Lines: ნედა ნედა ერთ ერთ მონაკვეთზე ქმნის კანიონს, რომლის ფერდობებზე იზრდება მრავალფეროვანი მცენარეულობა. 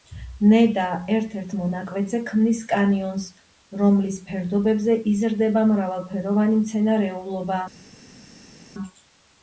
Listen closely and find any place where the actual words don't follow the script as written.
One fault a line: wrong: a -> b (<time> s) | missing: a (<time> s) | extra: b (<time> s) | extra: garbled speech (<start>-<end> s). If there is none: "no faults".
missing: ნედა (0.8 s)